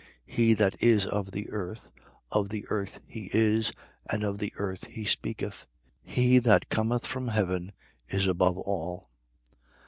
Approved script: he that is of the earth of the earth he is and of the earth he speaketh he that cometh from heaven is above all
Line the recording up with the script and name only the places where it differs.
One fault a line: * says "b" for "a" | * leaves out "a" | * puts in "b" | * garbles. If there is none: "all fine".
all fine